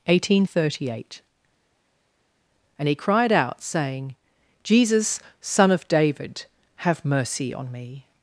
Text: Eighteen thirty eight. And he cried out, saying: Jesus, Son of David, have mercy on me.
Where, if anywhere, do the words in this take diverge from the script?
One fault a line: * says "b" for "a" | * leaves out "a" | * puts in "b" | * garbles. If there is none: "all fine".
all fine